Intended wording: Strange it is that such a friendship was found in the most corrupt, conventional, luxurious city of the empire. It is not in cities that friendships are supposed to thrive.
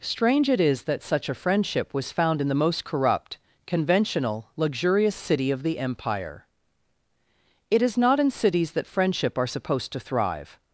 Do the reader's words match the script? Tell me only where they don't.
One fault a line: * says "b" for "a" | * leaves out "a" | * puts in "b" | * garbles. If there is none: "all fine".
* says "friendship" for "friendships"